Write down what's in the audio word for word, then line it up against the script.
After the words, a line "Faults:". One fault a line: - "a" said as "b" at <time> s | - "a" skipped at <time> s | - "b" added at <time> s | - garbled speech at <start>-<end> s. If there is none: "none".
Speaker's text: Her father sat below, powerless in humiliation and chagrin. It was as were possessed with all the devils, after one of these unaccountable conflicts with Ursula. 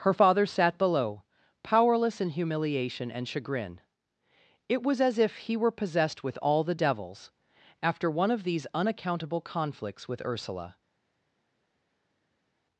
Her father sat below, powerless in humiliation and chagrin. It was as if he were possessed with all the devils, after one of these unaccountable conflicts with Ursula.
Faults:
- "if he" added at 5.2 s